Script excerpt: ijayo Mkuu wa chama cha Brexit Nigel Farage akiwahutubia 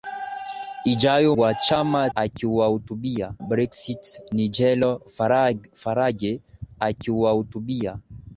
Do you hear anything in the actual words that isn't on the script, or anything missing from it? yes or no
yes